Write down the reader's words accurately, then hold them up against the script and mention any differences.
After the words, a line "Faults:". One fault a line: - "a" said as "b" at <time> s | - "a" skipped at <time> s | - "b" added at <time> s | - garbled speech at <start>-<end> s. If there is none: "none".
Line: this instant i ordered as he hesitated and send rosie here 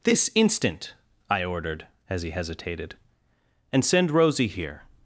this instant i ordered as he hesitated and send rosie here
Faults:
none